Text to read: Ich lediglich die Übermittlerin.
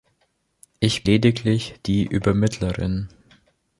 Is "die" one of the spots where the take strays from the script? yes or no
no